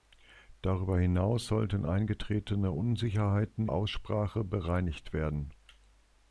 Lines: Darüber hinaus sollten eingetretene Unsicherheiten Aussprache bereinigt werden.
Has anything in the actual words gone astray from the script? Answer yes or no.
no